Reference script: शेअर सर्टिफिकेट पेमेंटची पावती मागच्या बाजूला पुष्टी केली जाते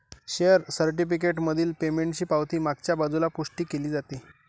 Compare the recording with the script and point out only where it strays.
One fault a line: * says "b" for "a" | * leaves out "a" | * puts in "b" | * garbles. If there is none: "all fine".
* puts in "मधील"